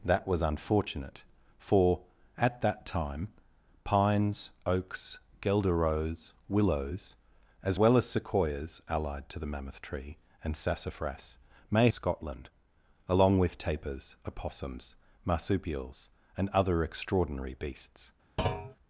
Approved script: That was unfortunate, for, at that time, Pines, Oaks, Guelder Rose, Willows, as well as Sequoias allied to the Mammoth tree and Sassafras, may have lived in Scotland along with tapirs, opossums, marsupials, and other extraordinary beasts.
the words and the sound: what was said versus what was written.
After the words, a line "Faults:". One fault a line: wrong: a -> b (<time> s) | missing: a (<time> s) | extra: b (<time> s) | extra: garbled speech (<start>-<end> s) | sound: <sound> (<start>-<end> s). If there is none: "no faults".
That was unfortunate, for, at that time, Pines, Oaks, Guelder Rose, Willows, as well as Sequoias allied to the Mammoth tree and Sassafras, may Scotland along with tapirs, opossums, marsupials, and other extraordinary beasts.
Faults:
missing: have lived in (11.9 s)
sound: thud (18.4-18.8 s)